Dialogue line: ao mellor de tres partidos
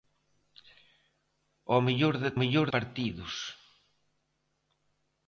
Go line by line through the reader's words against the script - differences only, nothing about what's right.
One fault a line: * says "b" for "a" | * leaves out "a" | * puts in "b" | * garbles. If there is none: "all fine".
* says "mellor" for "tres"